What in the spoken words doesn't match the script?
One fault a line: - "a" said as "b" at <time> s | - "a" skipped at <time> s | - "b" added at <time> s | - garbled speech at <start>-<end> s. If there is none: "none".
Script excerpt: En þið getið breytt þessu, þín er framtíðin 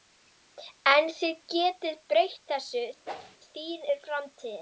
none